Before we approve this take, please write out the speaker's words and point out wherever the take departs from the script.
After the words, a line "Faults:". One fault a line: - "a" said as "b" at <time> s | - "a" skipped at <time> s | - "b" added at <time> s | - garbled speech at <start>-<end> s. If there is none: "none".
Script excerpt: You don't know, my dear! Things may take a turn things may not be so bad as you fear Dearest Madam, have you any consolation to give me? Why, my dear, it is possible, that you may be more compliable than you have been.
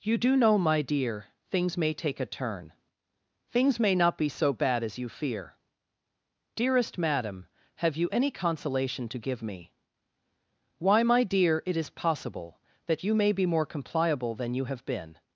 You do know, my dear! Things may take a turn things may not be so bad as you fear Dearest Madam, have you any consolation to give me? Why, my dear, it is possible, that you may be more compliable than you have been.
Faults:
- "don't" said as "do" at 0.2 s